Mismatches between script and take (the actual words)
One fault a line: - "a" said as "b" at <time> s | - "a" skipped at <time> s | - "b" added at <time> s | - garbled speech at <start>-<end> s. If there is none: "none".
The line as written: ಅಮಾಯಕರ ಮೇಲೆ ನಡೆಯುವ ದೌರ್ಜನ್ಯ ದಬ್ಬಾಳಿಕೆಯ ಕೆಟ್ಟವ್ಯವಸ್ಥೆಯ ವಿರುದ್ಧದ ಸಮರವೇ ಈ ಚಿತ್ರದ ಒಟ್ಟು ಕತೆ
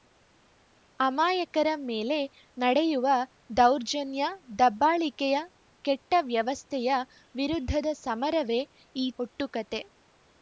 - "ಚಿತ್ರದ" skipped at 9.1 s